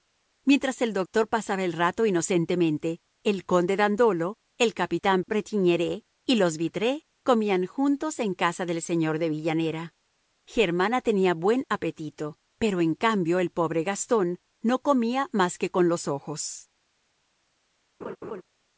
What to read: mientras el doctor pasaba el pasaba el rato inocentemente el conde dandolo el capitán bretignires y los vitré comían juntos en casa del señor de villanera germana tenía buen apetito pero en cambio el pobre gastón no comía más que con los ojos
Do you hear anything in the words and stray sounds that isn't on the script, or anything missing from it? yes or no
yes